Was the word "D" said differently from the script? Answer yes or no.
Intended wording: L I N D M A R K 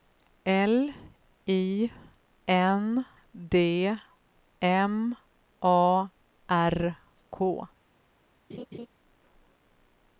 no